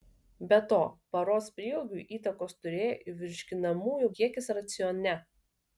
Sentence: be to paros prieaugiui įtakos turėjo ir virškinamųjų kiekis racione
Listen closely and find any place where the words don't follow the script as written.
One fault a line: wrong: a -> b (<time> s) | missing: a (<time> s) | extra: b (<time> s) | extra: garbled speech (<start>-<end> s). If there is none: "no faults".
no faults